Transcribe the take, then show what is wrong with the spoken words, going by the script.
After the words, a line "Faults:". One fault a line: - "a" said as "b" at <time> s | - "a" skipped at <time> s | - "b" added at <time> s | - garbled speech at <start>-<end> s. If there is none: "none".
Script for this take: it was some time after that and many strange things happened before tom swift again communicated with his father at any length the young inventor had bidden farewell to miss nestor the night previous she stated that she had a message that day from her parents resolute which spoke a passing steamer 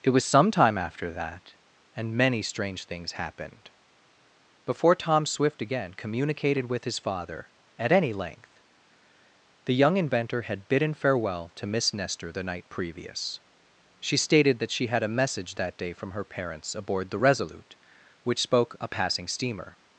it was some time after that and many strange things happened before tom swift again communicated with his father at any length the young inventor had bidden farewell to miss nestor the night previous she stated that she had a message that day from her parents aboard the resolute which spoke a passing steamer
Faults:
- "aboard the" added at 16.8 s